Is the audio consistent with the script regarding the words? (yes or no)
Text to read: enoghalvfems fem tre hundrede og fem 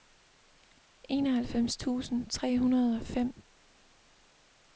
no